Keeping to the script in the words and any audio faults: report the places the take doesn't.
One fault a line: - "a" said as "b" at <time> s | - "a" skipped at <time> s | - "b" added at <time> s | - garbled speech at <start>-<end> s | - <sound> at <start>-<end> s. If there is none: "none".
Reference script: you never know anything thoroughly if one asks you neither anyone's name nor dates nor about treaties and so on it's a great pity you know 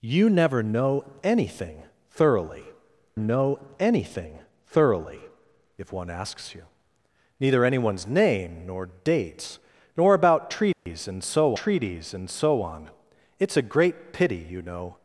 - "know anything thoroughly" added at 3.2 s
- dropout at 10.7-10.9 s
- "treaties and so" added at 11.5 s